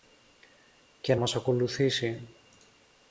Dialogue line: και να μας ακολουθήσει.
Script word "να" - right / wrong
wrong